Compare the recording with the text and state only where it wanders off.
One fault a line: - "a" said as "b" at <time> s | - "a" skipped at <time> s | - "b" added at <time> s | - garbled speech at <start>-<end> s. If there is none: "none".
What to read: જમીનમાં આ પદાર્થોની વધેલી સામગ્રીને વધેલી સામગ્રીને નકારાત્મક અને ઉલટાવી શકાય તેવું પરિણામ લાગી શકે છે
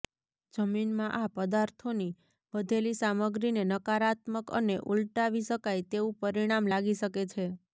- "વધેલી સામગ્રીને" skipped at 3.7 s